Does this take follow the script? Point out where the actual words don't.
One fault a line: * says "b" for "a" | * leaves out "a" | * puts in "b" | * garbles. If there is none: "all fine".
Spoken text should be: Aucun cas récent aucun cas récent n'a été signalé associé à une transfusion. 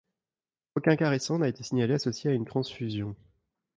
* leaves out "aucun cas récent"